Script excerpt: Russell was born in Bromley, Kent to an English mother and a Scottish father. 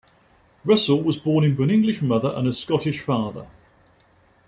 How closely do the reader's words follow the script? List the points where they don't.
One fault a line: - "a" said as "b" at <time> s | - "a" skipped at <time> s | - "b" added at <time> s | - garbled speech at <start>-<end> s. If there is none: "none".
- "Bromley Kent to" skipped at 1.6 s